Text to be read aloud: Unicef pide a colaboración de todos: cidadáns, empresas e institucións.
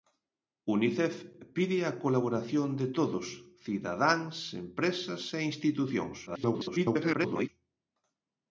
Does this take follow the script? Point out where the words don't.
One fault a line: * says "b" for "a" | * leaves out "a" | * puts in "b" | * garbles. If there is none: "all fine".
* garbles